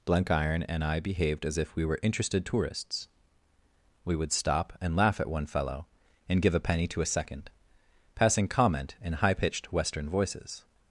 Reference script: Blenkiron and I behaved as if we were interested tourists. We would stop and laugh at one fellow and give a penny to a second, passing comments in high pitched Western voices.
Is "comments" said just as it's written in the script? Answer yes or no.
no